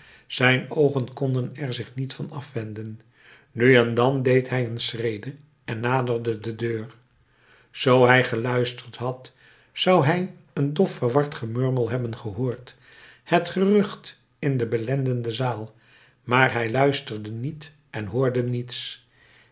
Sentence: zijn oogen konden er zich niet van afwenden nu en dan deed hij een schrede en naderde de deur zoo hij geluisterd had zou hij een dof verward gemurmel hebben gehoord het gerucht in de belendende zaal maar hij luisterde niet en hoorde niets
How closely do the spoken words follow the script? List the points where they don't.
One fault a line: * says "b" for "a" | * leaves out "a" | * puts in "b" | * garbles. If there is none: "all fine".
all fine